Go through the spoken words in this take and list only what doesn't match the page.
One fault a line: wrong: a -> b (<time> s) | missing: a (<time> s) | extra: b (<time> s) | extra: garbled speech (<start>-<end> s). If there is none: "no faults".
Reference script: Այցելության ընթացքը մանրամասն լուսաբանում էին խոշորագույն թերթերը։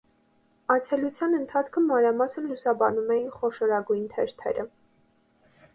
no faults